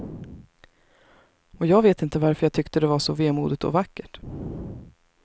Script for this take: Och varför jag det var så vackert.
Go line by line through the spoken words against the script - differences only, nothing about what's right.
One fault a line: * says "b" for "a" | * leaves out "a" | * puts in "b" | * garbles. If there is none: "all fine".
* puts in "jag vet inte"
* puts in "tyckte"
* puts in "vemodigt och"